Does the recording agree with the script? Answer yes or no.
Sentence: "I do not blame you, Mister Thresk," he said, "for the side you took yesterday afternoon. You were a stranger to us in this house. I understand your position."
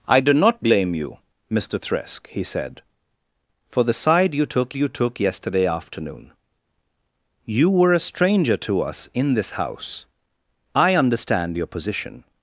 no